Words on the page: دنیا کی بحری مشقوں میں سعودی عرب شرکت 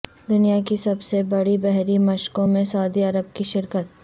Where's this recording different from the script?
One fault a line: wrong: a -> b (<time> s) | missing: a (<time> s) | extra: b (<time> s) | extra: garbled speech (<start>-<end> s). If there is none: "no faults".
extra: سب سے بڑی (0.8 s)
extra: کی (3.3 s)